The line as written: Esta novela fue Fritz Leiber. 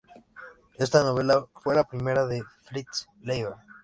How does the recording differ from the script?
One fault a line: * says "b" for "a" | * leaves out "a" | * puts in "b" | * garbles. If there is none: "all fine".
* puts in "la primera de"